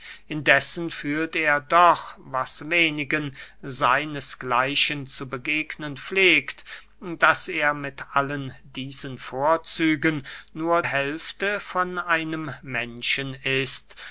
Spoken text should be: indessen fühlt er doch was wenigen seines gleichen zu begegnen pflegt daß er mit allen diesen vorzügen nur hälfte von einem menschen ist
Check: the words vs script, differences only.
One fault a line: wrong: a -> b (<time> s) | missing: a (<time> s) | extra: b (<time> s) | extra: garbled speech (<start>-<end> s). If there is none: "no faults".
no faults